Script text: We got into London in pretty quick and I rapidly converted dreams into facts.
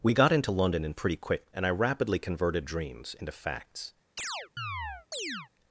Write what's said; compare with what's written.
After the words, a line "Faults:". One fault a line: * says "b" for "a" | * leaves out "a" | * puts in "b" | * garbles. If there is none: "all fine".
We got into London in pretty quick and I rapidly converted dreams into facts.
Faults:
all fine